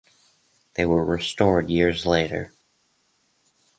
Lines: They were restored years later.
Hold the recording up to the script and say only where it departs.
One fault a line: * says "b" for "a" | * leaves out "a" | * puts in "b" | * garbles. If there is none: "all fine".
all fine